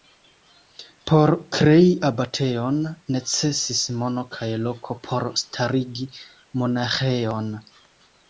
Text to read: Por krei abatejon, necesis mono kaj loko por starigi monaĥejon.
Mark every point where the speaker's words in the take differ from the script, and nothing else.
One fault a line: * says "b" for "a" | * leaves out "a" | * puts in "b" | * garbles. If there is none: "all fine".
all fine